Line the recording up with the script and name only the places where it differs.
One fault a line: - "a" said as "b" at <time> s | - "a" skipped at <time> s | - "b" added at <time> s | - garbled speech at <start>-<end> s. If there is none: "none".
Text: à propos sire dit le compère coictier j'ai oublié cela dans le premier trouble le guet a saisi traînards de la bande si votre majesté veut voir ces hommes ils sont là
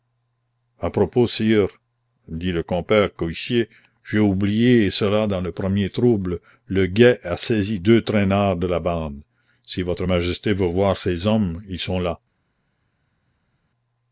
- "deux" added at 7.8 s